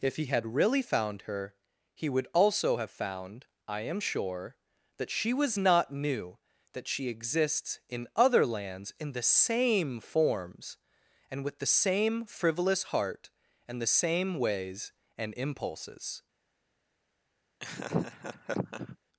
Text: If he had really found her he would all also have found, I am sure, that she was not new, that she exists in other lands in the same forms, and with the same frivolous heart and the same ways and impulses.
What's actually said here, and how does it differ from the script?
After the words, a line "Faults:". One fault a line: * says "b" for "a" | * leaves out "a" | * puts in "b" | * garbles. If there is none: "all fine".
If he had really found her he would also have found, I am sure, that she was not new, that she exists in other lands in the same forms, and with the same frivolous heart and the same ways and impulses.
Faults:
* leaves out "all"